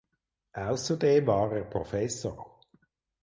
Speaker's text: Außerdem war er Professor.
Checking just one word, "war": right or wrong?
right